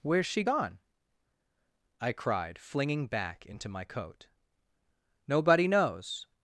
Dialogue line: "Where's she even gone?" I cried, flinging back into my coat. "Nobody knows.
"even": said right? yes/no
no